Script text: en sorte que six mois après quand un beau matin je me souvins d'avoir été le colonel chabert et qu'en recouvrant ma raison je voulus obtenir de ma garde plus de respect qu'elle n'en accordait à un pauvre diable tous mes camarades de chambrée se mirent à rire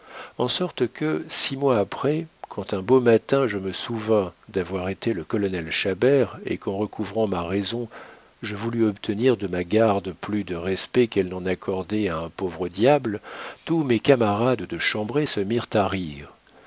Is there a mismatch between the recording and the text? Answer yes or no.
no